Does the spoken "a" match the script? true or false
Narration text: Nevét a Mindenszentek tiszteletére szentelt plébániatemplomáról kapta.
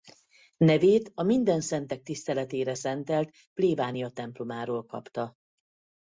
true